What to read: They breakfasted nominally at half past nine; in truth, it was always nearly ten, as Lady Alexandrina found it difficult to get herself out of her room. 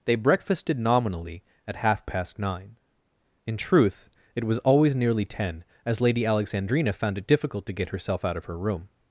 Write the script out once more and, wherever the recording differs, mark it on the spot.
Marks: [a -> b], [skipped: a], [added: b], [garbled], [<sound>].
They breakfasted nominally at half past nine; in truth, it was always nearly ten, as Lady Alexandrina found it difficult to get herself out of her room.